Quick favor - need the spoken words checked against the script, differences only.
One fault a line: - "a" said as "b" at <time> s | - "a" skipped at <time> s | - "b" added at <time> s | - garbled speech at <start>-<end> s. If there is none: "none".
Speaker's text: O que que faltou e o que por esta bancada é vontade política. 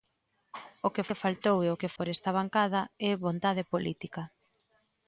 none